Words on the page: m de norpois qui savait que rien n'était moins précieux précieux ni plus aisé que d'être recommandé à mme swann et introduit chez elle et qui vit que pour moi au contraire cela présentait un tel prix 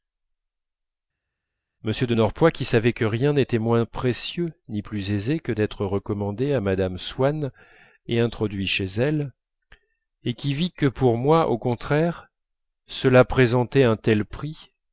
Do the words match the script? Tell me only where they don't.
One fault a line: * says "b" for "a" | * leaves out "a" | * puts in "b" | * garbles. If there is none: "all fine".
* leaves out "précieux"